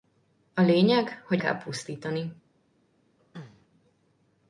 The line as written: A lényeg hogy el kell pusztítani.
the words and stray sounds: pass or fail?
fail